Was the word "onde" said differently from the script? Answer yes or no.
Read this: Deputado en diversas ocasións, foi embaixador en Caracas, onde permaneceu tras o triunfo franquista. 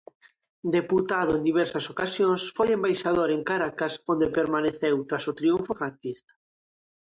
no